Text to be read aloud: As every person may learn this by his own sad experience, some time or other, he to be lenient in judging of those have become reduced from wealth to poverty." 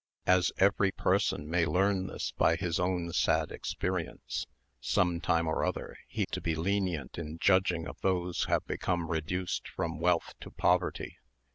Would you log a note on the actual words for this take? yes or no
no